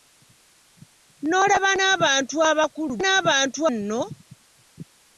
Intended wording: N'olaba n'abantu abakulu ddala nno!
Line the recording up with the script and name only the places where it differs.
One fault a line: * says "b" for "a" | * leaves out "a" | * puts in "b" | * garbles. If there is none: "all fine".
* says "n'abantu" for "ddala"